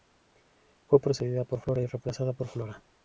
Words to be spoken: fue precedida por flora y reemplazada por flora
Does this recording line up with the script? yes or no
yes